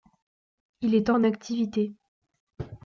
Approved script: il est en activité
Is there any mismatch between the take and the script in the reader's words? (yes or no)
no